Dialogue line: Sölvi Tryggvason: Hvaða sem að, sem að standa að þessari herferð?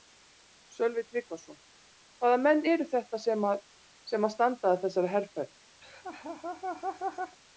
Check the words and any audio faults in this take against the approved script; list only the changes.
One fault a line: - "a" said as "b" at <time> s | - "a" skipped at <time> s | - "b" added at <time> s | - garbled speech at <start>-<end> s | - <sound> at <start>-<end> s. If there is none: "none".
- "menn eru þetta" added at 2.5 s
- laugh at 5.8-7.4 s